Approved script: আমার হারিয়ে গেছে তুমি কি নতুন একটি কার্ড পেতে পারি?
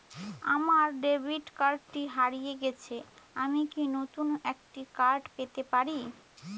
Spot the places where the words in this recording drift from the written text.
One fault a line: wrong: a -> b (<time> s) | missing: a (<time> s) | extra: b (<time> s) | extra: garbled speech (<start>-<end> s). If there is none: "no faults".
extra: ডেবিট কার্ডটি (1.0 s)
wrong: তুমি -> আমি (3.4 s)